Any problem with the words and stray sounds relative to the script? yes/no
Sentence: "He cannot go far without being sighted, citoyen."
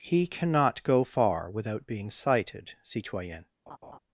yes